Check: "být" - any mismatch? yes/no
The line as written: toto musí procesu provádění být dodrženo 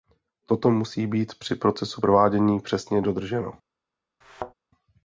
yes